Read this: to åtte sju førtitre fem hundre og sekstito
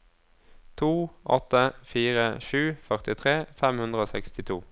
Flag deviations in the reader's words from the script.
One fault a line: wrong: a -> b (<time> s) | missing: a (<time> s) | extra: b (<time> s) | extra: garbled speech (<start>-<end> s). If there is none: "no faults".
extra: fire (1.9 s)